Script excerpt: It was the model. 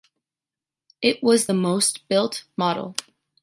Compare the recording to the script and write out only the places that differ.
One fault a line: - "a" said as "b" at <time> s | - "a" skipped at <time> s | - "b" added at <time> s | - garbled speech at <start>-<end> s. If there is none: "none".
- "most built" added at 1.5 s